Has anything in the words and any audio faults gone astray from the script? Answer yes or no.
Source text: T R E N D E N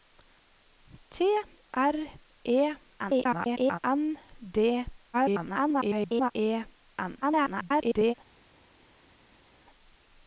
yes